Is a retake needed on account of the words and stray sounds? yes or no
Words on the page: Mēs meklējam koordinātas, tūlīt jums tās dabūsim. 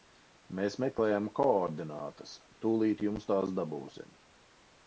no